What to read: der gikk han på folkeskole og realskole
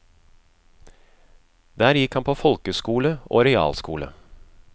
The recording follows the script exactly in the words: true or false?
true